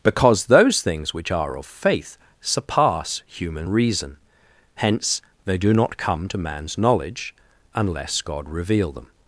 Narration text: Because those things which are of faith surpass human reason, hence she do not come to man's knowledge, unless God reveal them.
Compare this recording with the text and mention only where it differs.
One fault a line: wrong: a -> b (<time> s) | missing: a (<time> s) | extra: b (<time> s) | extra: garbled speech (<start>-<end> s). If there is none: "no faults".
wrong: she -> they (5.4 s)